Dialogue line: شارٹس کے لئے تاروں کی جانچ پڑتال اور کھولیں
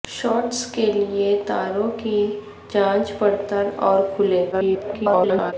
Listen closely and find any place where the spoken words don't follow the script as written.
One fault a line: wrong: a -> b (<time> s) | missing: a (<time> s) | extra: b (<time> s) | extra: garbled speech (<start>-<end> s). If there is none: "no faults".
extra: garbled speech (4.5-5.5 s)